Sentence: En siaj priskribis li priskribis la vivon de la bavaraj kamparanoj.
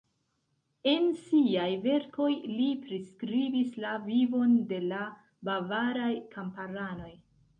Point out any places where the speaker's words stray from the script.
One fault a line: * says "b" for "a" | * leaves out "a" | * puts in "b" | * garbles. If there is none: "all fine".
* says "verkoj" for "priskribis"